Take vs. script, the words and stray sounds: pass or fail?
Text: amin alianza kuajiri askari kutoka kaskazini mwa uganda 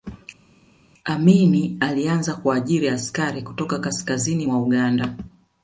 pass